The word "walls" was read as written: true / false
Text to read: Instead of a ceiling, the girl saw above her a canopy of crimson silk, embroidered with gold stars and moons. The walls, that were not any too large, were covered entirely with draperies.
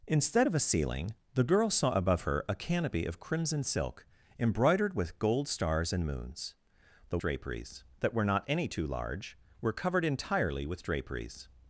false